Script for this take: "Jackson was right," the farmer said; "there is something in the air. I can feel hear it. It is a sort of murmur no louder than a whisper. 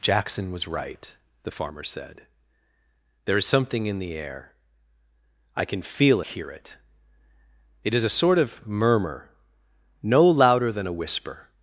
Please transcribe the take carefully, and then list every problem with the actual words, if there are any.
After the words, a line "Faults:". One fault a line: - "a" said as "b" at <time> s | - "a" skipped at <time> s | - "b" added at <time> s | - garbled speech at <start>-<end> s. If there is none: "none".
"Jackson was right," the farmer said; "there is something in the air. I can feel hear it. It is a sort of murmur no louder than a whisper.
Faults:
none